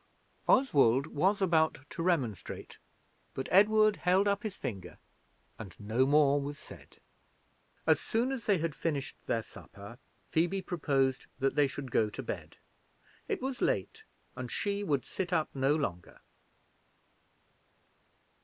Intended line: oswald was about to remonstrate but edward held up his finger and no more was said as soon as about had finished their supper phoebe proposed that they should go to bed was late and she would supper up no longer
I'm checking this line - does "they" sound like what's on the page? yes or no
yes